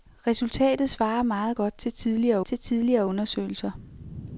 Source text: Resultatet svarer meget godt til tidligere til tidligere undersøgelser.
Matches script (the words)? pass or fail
pass